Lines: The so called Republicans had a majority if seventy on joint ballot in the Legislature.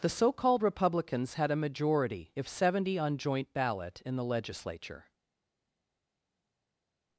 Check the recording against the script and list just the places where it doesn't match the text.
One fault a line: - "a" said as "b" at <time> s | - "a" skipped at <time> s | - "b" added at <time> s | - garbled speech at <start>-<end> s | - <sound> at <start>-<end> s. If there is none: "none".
none